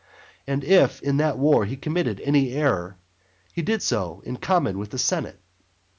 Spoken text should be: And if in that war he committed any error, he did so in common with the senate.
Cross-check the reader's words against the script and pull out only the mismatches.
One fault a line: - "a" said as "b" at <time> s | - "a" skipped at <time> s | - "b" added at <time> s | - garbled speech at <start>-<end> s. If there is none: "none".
none